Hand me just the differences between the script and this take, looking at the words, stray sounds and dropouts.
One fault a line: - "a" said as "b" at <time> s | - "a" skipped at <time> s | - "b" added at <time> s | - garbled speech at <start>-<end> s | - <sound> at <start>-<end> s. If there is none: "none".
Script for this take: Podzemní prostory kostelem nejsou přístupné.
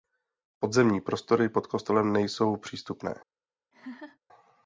- "pod" added at 1.5 s
- laugh at 3.7-4.2 s